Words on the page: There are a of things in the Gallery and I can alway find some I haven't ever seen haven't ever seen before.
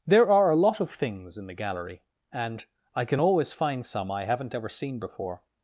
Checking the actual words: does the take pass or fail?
fail